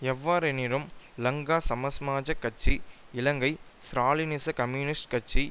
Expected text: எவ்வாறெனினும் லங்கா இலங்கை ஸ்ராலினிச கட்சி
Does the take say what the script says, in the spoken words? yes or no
no